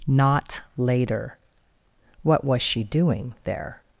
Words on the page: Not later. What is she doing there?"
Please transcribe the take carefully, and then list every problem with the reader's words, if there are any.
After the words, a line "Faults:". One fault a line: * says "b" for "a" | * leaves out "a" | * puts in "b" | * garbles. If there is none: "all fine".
Not later. What was she doing there?"
Faults:
* says "was" for "is"